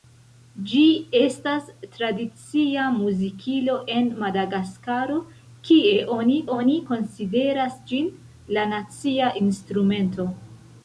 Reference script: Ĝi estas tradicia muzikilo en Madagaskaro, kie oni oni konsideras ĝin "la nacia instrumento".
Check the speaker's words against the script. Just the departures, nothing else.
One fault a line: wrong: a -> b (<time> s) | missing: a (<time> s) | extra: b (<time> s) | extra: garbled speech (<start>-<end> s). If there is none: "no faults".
no faults